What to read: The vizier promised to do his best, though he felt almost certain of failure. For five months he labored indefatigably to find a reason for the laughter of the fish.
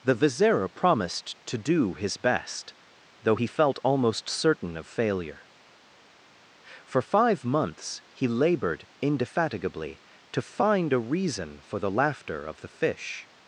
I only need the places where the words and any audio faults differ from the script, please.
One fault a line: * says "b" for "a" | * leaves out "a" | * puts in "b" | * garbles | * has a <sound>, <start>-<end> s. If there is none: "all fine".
all fine